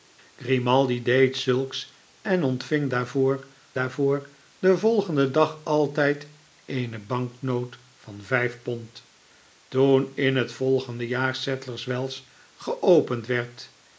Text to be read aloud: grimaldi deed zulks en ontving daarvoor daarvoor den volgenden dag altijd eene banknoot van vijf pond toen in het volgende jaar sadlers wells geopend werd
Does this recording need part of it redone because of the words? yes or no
no